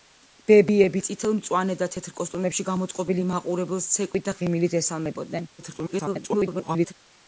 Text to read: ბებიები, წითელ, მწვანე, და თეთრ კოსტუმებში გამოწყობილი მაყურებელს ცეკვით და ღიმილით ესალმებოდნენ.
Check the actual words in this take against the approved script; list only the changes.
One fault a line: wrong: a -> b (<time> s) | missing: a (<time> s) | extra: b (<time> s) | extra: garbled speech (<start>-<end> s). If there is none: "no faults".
extra: garbled speech (5.6-6.9 s)